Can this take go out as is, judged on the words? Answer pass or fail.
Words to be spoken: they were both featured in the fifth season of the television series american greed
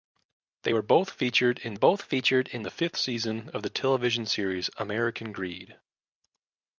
fail